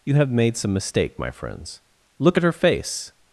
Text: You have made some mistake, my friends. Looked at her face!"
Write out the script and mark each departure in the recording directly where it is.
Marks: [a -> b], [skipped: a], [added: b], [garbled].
You have made some mistake, my friends. [Looked -> Look] at her face!"